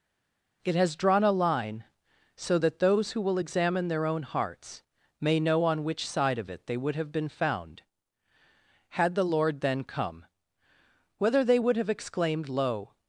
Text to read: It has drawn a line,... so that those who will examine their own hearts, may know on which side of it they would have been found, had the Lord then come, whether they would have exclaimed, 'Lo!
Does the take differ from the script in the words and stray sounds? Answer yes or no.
no